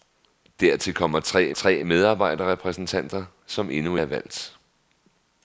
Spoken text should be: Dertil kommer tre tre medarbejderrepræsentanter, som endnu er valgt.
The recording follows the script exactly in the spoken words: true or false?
true